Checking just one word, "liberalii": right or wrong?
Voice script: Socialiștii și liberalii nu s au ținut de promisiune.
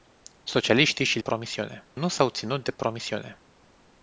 wrong